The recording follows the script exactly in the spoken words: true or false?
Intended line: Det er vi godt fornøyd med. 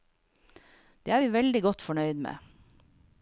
false